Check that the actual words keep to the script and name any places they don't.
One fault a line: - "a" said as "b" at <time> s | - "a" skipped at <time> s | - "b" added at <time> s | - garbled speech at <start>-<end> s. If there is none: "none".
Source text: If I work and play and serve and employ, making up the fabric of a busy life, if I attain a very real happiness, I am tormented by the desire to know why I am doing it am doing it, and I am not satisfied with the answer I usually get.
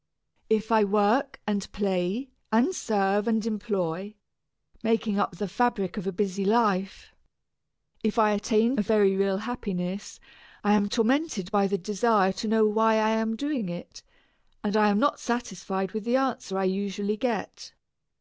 - "am doing it" skipped at 14.0 s